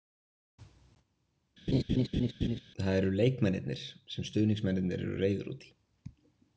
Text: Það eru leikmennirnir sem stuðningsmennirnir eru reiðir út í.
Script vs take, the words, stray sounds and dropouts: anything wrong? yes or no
yes